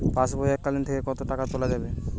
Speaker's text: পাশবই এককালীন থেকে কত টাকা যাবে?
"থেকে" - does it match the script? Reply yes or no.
yes